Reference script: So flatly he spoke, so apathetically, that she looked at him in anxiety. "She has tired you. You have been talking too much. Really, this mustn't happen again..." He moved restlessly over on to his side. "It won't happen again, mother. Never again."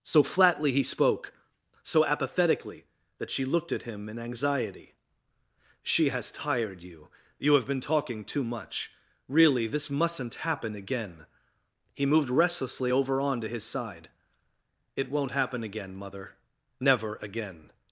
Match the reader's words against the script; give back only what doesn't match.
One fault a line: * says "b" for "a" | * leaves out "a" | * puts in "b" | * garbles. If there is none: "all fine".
all fine